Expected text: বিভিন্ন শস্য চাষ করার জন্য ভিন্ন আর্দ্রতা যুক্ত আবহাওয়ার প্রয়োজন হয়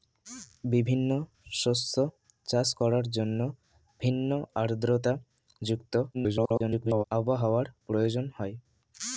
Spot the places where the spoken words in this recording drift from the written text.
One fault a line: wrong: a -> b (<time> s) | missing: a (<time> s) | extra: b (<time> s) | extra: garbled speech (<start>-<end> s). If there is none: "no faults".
extra: garbled speech (6.1-7.0 s)